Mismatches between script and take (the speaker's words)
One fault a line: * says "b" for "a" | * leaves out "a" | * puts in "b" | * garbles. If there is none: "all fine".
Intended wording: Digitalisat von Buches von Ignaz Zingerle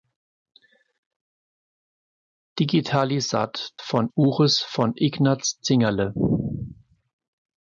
all fine